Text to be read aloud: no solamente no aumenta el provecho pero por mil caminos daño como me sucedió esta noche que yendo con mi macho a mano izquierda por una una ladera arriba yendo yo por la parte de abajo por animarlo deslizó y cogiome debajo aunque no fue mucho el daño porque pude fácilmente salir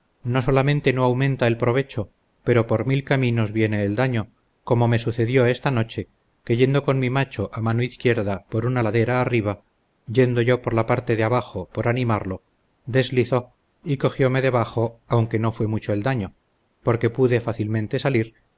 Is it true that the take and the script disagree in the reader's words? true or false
true